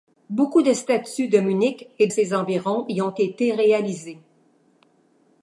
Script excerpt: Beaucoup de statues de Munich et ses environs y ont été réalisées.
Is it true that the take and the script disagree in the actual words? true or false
false